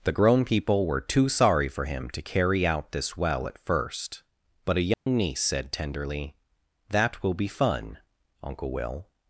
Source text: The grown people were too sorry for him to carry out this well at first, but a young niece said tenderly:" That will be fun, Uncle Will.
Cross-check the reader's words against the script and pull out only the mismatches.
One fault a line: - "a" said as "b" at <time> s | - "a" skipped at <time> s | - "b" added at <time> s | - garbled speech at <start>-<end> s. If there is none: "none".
none